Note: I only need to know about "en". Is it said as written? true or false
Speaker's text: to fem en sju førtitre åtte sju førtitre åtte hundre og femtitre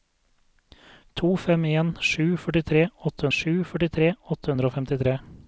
true